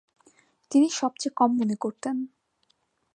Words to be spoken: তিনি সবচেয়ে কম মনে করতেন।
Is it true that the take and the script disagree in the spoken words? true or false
false